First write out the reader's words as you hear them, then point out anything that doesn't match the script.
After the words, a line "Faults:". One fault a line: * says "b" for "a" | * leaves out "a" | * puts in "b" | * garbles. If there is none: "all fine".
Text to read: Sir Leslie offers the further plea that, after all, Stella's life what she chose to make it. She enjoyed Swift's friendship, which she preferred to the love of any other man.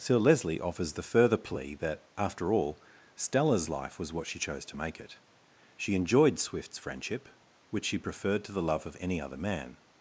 Sir Leslie offers the further plea that, after all, Stella's life was what she chose to make it. She enjoyed Swift's friendship, which she preferred to the love of any other man.
Faults:
* puts in "was"